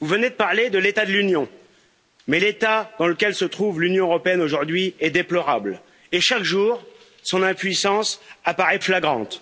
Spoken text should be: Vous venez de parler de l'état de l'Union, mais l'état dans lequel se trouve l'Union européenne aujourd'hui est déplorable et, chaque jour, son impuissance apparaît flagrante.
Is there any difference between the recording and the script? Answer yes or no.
no